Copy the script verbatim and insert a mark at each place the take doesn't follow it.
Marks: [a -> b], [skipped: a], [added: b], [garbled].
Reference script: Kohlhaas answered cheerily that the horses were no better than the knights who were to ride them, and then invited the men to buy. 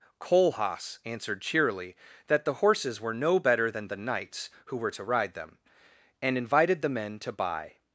Kohlhaas answered cheerily that the horses were no better than the knights who were to ride them, and [skipped: then] invited the men to buy.